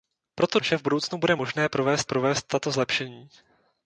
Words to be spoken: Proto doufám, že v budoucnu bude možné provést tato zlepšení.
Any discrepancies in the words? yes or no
yes